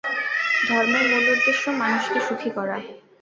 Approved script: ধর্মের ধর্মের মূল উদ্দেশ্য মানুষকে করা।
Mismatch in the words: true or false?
true